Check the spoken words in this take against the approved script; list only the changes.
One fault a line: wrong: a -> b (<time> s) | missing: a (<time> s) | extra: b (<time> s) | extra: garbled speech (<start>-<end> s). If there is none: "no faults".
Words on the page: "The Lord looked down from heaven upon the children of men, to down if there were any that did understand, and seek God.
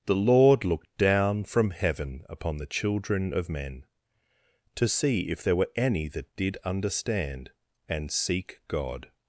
wrong: down -> see (4.9 s)